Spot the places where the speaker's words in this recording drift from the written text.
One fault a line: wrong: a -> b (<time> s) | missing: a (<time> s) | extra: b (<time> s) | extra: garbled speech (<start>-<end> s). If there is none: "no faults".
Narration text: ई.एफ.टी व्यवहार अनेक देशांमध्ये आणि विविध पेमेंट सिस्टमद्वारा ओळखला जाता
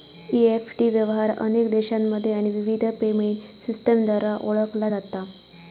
no faults